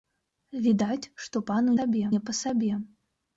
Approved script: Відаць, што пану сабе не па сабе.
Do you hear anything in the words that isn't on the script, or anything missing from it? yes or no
no